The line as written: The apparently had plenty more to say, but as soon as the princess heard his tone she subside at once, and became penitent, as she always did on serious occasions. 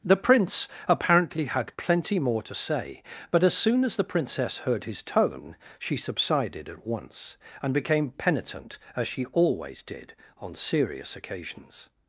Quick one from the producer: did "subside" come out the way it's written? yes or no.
no